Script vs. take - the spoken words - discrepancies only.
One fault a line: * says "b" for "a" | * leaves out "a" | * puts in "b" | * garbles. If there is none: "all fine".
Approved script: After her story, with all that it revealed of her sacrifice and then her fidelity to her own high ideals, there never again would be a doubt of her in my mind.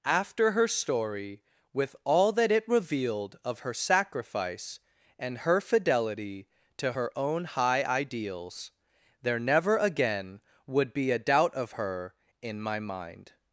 * leaves out "then"